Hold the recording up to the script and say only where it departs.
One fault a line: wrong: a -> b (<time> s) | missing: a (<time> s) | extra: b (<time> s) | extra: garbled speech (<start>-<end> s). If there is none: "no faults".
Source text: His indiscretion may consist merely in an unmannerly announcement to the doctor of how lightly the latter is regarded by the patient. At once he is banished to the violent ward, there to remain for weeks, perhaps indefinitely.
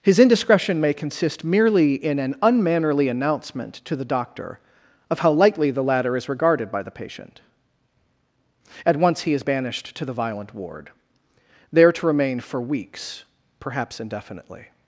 no faults